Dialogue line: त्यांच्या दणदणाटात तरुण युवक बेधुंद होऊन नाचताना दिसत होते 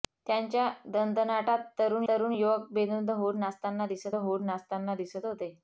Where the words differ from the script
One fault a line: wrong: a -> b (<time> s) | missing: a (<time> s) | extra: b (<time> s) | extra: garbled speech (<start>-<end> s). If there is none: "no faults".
extra: तरुण (2.1 s)
extra: होऊन नाचताना दिसत (4.2 s)